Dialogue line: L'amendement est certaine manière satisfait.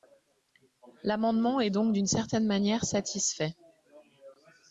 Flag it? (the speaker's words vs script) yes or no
yes